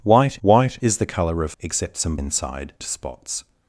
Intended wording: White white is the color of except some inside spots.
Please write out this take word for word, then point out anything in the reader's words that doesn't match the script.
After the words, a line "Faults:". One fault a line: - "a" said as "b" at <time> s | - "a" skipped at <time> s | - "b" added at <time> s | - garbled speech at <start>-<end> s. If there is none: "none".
White white is the color of except some inside spots.
Faults:
none